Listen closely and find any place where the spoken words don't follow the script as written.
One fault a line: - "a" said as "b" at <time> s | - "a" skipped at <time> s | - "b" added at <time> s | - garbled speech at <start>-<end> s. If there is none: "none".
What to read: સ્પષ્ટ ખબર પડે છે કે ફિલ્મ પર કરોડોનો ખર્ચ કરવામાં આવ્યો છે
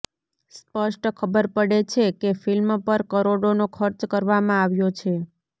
none